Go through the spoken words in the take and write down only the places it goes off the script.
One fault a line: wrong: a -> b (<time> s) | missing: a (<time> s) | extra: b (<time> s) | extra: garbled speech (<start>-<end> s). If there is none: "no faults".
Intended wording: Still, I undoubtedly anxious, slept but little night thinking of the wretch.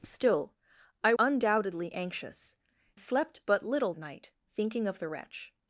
no faults